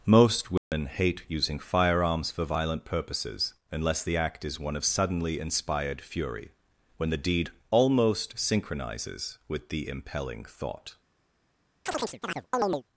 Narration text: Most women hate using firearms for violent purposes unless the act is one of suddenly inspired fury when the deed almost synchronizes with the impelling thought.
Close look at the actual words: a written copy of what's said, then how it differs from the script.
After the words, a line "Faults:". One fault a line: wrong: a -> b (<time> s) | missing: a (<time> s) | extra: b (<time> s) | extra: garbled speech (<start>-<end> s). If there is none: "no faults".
Most women hate using firearms for violent purposes unless the act is one of suddenly inspired fury when the deed almost synchronizes with the impelling thought.
Faults:
no faults